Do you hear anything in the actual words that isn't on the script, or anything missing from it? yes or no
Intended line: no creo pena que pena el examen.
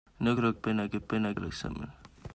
no